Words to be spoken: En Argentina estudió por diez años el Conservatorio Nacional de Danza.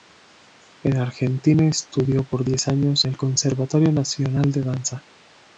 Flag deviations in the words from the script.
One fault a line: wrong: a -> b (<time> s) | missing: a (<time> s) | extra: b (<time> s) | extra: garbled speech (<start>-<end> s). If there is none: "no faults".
no faults